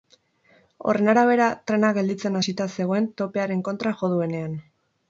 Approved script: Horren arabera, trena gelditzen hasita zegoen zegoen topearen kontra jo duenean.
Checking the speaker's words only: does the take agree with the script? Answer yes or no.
no